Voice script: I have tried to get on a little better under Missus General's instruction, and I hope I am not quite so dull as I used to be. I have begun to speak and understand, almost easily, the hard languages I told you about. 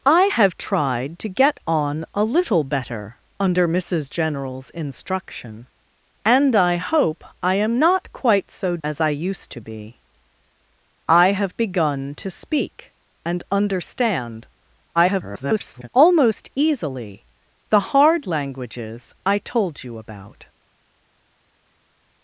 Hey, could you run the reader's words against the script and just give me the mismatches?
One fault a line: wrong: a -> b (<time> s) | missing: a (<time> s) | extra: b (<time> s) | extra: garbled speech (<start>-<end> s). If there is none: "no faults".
missing: dull (8.8 s)
extra: garbled speech (15.0-15.9 s)